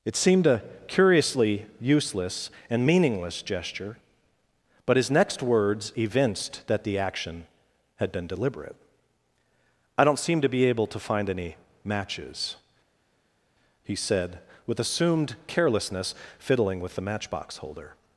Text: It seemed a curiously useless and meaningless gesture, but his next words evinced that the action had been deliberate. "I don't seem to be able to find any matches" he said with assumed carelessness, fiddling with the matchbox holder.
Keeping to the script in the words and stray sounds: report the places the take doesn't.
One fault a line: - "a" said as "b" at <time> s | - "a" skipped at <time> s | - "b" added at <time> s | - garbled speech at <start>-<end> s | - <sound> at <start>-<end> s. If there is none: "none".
none